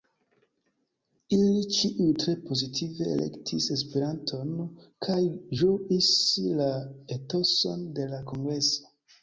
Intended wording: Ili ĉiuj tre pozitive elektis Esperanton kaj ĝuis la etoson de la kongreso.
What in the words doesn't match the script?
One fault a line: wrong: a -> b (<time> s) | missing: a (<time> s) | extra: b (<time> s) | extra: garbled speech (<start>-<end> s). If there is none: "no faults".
no faults